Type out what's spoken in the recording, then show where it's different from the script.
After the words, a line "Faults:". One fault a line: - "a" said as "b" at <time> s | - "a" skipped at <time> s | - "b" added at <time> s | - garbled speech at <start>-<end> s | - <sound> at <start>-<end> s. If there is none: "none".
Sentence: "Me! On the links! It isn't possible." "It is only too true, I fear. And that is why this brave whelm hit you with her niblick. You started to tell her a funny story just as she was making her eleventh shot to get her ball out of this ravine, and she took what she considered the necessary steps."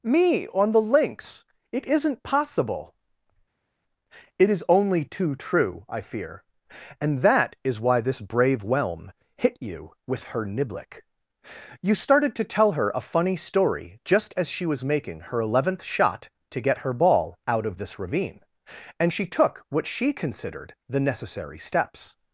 "Me! On the links! It isn't possible." "It is only too true, I fear. And that is why this brave whelm hit you with her niblick. You started to tell her a funny story just as she was making her eleventh shot to get her ball out of this ravine, and she took what she considered the necessary steps."
Faults:
none